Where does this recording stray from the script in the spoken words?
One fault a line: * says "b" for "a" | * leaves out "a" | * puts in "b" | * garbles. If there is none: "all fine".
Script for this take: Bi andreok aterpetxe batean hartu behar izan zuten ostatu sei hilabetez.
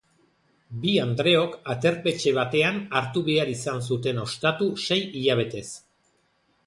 all fine